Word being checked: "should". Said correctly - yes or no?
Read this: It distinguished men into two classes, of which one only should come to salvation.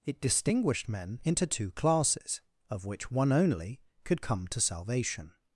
no